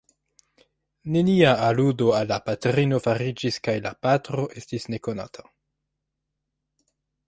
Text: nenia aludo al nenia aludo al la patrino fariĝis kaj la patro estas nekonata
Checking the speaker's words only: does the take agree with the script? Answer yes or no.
no